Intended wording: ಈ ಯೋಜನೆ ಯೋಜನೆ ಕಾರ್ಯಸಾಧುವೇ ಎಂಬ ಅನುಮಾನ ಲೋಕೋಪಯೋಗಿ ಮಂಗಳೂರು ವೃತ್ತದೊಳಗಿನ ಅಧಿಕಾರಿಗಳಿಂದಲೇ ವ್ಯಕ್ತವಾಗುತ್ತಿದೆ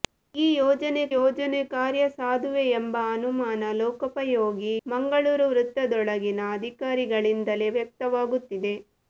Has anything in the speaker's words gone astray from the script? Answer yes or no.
no